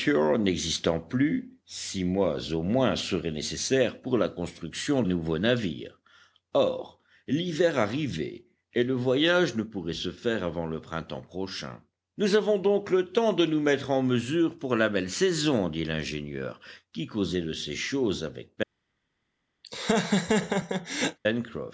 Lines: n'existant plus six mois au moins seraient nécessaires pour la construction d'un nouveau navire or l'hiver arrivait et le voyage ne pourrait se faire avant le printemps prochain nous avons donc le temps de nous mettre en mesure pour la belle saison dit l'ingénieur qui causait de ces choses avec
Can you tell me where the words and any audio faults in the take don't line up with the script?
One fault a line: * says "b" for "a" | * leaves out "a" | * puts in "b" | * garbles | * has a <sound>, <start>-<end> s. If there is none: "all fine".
* leaves out "d'un"
* has a laugh, 19.6-21.2 s